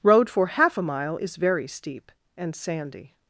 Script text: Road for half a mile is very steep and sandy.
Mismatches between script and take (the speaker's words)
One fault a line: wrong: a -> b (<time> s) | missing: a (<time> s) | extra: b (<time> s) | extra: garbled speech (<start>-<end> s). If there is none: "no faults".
no faults